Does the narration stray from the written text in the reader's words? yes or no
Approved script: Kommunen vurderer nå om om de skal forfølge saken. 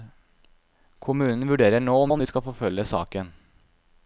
no